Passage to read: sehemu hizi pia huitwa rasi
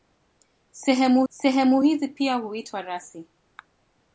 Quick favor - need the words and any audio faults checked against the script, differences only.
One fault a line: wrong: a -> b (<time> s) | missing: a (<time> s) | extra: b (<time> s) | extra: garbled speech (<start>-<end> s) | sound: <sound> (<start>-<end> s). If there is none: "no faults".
extra: sehemu (1.3 s)